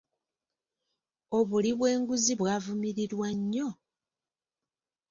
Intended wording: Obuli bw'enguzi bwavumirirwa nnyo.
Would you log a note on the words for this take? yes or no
no